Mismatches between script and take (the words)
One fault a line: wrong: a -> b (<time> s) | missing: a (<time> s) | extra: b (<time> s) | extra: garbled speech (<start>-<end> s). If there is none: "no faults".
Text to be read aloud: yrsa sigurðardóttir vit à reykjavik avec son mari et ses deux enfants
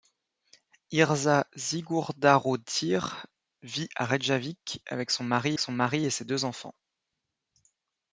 extra: son mari (5.6 s)